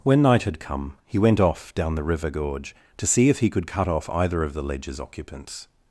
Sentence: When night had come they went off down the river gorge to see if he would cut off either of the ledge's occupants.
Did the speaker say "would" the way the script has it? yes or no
no